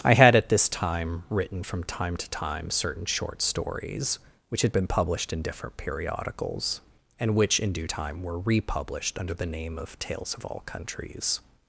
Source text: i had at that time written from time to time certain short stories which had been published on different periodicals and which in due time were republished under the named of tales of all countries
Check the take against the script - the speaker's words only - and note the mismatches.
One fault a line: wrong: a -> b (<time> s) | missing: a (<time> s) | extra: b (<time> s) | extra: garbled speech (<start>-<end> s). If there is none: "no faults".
wrong: that -> this (0.5 s)
wrong: on -> in (5.3 s)
wrong: named -> name (9.5 s)